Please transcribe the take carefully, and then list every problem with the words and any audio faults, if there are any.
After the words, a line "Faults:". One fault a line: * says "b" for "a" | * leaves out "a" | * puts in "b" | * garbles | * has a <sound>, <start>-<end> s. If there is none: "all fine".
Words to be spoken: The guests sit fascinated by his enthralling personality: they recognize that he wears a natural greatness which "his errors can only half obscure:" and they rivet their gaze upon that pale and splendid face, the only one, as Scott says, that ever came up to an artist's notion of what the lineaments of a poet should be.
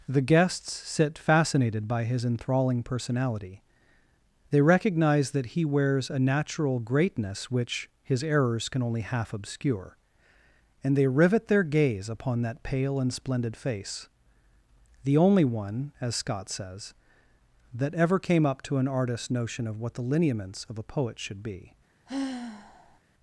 The guests sit fascinated by his enthralling personality: they recognize that he wears a natural greatness which "his errors can only half obscure:" and they rivet their gaze upon that pale and splendid face, the only one, as Scott says, that ever came up to an artist's notion of what the lineaments of a poet should be.
Faults:
* has a sigh, 22.1-23.0 s